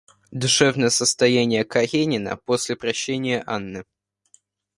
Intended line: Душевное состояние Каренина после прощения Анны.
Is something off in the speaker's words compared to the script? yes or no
no